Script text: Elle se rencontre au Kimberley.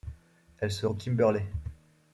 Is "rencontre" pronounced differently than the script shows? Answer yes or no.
yes